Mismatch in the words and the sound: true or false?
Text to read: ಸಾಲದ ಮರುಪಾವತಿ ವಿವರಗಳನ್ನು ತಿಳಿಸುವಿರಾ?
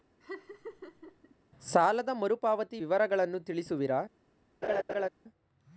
true